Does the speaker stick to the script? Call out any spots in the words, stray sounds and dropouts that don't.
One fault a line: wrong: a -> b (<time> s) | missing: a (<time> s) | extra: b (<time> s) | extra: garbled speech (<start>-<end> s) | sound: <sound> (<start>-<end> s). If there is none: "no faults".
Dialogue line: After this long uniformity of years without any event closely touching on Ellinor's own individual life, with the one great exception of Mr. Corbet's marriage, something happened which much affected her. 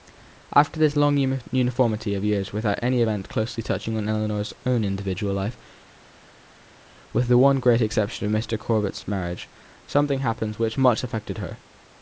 no faults